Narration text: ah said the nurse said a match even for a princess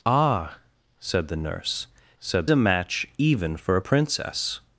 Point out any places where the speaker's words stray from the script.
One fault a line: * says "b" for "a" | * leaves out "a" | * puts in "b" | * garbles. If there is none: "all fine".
all fine